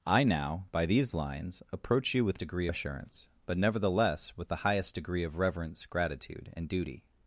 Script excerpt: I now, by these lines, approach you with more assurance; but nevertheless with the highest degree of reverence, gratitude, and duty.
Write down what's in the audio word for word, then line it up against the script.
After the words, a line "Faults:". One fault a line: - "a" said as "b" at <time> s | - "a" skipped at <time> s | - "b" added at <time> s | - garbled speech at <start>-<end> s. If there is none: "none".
I now, by these lines, approach you with degree assurance; but nevertheless with the highest degree of reverence, gratitude, and duty.
Faults:
- "more" said as "degree" at 2.4 s